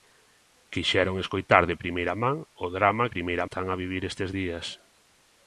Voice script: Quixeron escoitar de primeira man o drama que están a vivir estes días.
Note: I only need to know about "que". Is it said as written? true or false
false